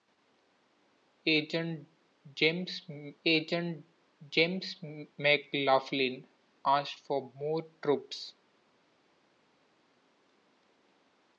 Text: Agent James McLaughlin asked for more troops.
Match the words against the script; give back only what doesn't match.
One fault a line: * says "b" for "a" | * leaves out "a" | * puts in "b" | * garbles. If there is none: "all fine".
* puts in "agent James"